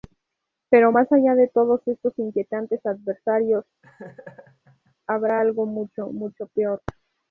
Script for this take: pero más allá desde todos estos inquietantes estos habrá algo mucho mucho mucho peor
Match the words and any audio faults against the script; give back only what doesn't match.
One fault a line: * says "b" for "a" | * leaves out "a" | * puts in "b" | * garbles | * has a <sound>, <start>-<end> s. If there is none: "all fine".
* says "de" for "desde"
* says "adversarios" for "estos"
* has a laugh, 3.8-5.0 s
* leaves out "mucho"